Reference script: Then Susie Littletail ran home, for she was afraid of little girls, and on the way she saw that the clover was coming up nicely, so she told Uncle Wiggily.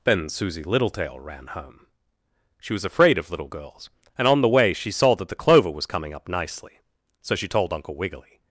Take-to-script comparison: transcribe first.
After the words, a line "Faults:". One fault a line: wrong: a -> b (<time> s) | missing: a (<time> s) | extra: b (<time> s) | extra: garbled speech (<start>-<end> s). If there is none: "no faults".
Then Susie Littletail ran home, she was afraid of little girls, and on the way she saw that the clover was coming up nicely, so she told Uncle Wiggily.
Faults:
missing: for (1.9 s)